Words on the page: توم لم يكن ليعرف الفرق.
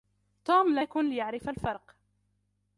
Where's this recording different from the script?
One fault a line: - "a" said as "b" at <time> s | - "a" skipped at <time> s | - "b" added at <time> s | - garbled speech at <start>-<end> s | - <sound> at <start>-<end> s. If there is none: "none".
- "لم" skipped at 0.8 s